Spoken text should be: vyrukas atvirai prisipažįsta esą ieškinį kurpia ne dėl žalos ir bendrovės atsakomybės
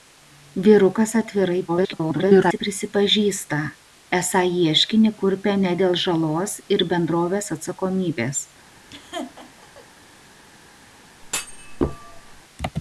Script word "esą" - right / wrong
right